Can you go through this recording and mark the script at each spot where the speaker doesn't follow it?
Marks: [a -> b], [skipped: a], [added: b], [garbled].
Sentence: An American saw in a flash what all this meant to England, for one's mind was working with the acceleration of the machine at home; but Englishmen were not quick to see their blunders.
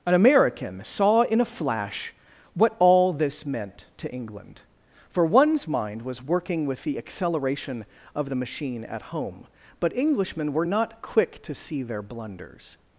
An American saw in a flash what all this meant to England, for one's mind was working with the acceleration of the machine at home; but Englishmen were not quick to see their blunders.